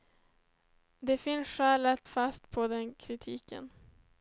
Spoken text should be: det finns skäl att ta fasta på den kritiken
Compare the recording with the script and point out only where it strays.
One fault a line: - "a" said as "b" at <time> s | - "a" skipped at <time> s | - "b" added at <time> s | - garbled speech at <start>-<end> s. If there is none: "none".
- "ta" skipped at 2.1 s